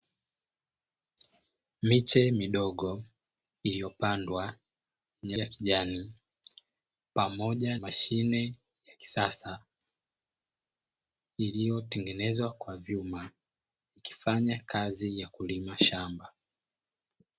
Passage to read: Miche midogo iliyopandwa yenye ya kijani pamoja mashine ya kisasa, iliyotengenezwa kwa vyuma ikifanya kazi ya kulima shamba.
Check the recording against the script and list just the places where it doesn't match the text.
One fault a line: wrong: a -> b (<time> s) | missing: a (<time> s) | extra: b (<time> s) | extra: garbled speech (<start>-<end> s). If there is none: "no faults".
no faults